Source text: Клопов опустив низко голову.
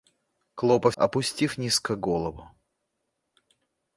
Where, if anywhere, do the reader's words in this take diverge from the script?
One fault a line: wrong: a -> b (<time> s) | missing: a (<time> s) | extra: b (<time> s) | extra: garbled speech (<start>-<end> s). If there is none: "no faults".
no faults